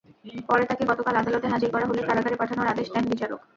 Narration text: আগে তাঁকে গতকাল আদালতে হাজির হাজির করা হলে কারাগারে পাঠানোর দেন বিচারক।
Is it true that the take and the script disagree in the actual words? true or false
true